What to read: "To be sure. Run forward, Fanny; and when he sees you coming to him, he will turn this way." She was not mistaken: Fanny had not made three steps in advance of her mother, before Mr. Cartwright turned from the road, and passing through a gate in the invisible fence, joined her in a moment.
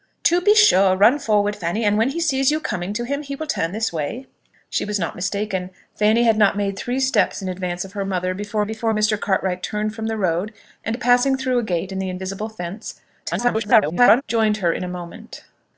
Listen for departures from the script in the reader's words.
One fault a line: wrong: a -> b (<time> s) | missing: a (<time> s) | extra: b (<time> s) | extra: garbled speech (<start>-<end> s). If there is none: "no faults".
extra: before (8.6 s)
extra: garbled speech (13.2-14.2 s)